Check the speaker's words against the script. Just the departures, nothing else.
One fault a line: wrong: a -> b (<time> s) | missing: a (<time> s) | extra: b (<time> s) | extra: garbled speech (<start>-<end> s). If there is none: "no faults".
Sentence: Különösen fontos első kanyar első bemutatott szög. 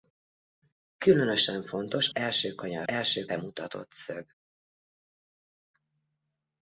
no faults